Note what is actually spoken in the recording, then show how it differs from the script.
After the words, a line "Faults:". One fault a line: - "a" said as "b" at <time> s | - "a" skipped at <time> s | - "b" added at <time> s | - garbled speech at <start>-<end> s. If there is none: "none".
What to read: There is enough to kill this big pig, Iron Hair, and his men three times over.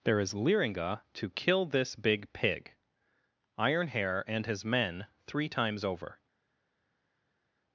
There is liringa to kill this big pig, Iron Hair, and his men three times over.
Faults:
- "enough" said as "liringa" at 0.3 s